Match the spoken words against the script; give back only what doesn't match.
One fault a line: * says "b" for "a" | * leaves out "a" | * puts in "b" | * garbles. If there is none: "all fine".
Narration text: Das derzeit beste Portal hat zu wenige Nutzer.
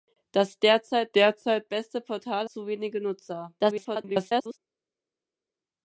* puts in "derzeit"
* leaves out "hat"
* garbles